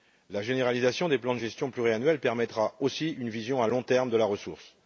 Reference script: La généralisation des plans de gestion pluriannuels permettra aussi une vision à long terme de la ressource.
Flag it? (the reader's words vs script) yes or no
no